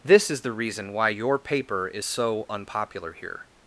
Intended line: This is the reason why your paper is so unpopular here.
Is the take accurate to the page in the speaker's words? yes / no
yes